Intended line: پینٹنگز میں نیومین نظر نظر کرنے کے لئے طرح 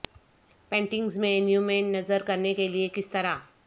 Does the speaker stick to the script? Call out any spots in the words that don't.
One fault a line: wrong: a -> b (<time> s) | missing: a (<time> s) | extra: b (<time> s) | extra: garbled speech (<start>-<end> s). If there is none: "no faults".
missing: نظر (2.2 s)
extra: کس (2.9 s)